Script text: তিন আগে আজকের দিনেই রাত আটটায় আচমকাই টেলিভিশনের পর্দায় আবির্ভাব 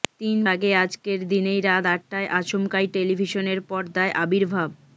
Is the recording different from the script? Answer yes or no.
no